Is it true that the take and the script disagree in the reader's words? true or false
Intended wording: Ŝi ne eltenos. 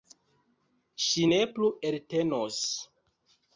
true